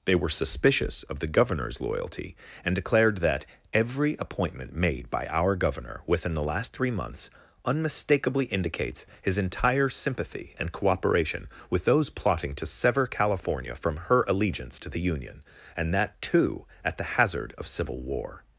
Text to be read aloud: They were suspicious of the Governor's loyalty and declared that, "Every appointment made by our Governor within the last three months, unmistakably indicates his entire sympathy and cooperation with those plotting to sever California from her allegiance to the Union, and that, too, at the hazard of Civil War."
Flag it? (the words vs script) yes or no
no